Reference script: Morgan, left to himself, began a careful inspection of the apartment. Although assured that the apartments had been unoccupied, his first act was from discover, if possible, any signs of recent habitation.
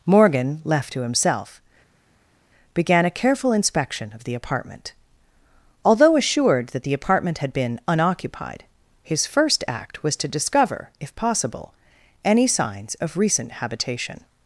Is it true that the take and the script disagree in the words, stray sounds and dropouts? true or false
true